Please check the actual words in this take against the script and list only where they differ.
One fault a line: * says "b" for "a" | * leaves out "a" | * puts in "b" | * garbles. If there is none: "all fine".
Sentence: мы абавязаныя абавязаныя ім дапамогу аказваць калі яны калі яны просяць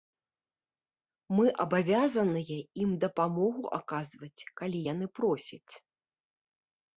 * leaves out "абавязаныя"
* leaves out "калі яны"